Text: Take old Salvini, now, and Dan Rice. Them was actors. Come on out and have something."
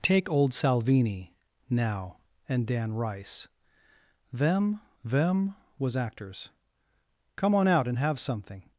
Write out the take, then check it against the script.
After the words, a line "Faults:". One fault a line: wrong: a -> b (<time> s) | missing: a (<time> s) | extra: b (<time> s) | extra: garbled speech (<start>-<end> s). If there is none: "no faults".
Take old Salvini, now, and Dan Rice. Them them was actors. Come on out and have something."
Faults:
extra: them (5.0 s)